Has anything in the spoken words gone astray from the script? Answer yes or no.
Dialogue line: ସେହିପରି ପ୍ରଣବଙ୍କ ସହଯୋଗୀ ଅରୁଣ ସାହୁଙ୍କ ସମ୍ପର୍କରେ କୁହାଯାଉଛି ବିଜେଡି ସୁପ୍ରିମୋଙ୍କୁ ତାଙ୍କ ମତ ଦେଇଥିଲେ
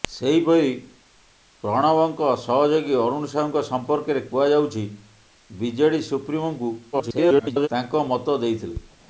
yes